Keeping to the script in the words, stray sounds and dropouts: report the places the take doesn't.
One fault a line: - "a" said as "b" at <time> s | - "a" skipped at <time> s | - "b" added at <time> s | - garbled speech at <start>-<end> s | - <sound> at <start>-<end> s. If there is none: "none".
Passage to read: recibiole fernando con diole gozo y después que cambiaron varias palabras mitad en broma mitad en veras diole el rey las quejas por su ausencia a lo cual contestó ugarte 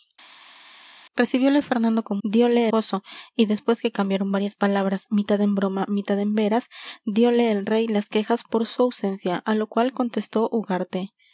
none